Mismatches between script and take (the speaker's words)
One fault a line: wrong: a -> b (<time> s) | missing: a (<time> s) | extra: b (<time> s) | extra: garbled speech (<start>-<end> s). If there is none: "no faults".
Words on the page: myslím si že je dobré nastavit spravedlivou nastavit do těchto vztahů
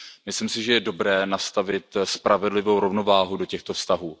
wrong: nastavit -> rovnováhu (2.8 s)